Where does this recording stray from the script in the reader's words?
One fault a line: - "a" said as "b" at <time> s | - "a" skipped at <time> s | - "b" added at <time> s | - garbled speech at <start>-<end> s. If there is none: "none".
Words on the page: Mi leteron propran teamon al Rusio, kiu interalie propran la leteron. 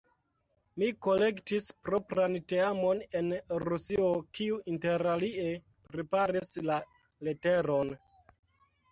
- "leteron" said as "kolektis" at 1.1 s
- "al" said as "en" at 3.2 s
- "propran" said as "preparis" at 5.9 s